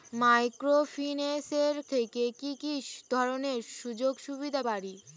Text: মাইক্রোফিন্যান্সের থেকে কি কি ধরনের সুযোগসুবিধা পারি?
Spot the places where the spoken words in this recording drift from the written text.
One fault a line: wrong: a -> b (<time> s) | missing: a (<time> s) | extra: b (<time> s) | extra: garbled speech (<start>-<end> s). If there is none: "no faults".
no faults